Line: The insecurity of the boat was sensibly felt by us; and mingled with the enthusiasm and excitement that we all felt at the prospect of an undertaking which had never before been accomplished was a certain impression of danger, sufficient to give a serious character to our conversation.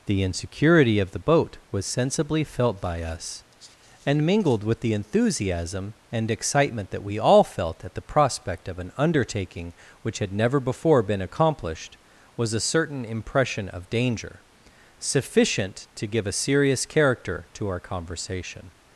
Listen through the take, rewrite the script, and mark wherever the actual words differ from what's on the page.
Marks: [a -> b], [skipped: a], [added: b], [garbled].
The insecurity of the boat was sensibly felt by us; and mingled with the enthusiasm and excitement that we all felt at the prospect of an undertaking which had never before been accomplished was a certain impression of danger, sufficient to give a serious character to our conversation.